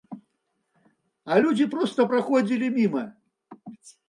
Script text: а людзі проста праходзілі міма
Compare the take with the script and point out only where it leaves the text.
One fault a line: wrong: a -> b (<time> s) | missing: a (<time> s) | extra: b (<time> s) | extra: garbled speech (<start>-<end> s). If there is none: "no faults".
no faults